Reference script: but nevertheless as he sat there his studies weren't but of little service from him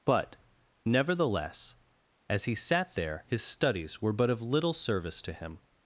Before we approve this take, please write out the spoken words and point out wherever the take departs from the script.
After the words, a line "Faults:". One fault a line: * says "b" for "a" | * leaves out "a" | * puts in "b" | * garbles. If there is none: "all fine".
but nevertheless as he sat there his studies were but of little service to him
Faults:
* says "were" for "weren't"
* says "to" for "from"